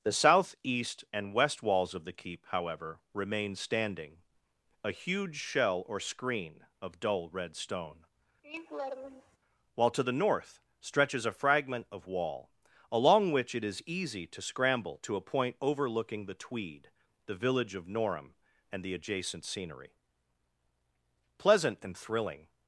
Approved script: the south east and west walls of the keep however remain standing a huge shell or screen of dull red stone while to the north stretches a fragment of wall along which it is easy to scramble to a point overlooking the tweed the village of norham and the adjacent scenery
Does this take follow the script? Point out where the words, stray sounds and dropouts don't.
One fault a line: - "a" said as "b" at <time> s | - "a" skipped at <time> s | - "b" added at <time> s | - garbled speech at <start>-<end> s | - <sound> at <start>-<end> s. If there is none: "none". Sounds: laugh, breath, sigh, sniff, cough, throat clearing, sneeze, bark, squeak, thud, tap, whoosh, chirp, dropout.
- laugh at 8.4-9.4 s
- "pleasant and thrilling" added at 21.4 s